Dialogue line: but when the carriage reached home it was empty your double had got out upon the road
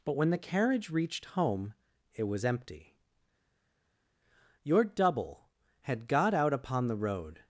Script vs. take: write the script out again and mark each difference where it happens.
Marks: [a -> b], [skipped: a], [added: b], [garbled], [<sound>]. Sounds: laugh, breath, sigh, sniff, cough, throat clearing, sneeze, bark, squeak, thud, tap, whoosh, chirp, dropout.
but when the carriage reached home it was empty your double had got out upon the road